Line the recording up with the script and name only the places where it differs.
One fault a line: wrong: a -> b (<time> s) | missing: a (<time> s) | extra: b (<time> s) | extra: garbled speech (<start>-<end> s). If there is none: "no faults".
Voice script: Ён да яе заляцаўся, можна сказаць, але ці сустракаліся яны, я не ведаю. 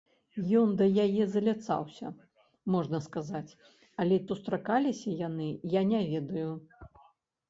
missing: ці (4.2 s)